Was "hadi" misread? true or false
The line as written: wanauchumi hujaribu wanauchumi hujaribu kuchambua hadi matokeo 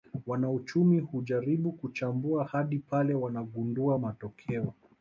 true